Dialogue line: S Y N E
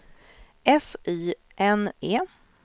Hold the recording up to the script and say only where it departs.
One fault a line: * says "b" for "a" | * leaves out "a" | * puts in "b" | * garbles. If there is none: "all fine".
all fine